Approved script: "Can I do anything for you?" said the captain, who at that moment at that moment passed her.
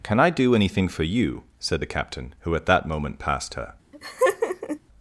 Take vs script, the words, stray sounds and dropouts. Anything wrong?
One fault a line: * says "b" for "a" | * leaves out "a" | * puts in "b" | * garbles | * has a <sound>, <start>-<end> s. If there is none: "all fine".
* leaves out "at that moment"
* has a laugh, 3.9-4.8 s